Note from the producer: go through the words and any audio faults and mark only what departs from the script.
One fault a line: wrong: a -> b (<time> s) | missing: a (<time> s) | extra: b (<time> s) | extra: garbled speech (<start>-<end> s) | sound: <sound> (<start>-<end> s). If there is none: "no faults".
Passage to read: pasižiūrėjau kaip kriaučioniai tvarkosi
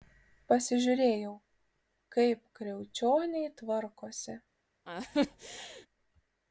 sound: laugh (4.9-5.9 s)